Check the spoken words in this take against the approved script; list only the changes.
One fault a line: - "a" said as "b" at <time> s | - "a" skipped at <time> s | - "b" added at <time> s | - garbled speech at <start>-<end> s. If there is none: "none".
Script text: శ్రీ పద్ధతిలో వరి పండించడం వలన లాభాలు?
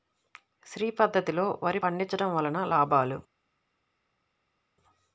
none